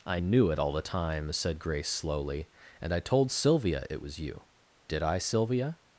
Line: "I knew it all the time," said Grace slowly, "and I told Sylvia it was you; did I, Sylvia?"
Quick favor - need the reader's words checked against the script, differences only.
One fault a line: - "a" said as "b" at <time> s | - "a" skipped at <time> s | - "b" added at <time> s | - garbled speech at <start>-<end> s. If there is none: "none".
none